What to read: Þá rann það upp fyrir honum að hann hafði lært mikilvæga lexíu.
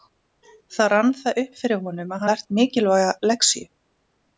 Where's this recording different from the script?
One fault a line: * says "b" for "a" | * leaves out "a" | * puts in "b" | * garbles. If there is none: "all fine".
* leaves out "hann hafði"